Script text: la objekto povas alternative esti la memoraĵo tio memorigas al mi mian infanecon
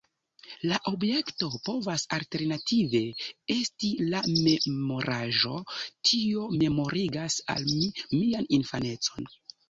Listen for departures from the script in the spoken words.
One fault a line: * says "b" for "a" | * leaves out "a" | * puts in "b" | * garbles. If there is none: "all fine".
all fine